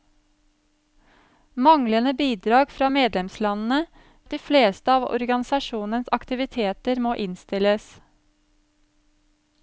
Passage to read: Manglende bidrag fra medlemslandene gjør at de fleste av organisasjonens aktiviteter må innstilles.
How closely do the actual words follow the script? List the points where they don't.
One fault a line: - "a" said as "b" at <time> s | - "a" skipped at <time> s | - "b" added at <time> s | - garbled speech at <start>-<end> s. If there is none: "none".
- "gjør" skipped at 3.8 s